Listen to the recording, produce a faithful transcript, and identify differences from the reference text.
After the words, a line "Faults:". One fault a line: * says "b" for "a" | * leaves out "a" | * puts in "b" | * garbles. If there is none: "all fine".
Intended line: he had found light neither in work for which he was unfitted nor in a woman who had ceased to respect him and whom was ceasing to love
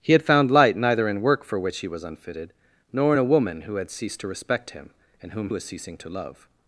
he had found light neither in work for which he was unfitted nor in a woman who had ceased to respect him and whom was ceasing to love
Faults:
all fine